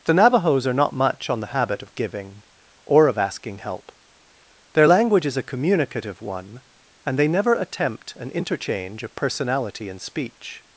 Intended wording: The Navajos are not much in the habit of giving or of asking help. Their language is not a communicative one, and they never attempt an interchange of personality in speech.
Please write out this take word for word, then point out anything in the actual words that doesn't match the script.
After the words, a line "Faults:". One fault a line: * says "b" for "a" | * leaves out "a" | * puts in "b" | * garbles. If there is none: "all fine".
The Navajos are not much on the habit of giving or of asking help. Their language is a communicative one, and they never attempt an interchange of personality in speech.
Faults:
* says "on" for "in"
* leaves out "not"